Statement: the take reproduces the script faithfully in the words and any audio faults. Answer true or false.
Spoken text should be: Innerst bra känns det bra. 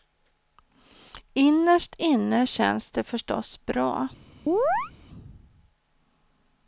false